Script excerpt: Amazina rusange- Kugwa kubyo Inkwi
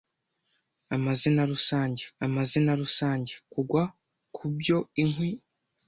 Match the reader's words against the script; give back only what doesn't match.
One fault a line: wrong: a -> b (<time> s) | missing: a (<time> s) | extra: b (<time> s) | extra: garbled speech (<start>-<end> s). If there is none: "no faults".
extra: amazina rusange (2.3 s)